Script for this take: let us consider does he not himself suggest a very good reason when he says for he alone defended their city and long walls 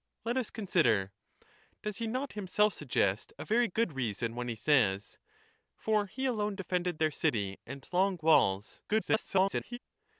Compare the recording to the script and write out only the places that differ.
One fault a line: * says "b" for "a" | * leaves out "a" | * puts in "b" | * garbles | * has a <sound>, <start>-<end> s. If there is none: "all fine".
* garbles